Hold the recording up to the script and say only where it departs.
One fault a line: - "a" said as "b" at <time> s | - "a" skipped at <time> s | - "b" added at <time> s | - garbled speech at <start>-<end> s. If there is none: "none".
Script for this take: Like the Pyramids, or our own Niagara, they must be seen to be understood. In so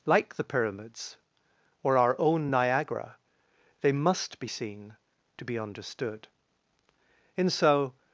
none